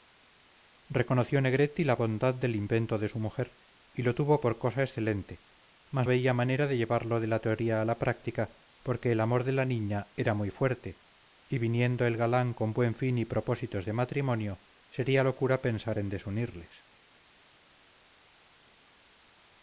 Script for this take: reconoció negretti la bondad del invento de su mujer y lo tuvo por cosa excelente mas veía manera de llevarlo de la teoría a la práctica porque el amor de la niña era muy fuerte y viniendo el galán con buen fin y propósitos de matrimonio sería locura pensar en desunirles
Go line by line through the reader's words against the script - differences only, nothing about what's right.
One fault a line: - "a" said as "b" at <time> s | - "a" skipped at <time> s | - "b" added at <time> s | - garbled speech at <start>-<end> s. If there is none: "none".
none